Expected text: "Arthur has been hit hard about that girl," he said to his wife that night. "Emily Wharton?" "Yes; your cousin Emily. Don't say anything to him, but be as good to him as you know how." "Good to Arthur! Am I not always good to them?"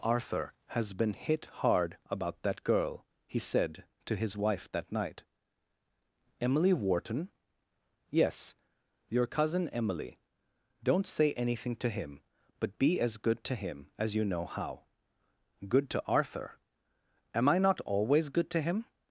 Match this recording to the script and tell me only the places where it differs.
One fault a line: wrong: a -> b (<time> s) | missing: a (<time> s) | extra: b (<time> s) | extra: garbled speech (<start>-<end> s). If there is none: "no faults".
wrong: them -> him (18.6 s)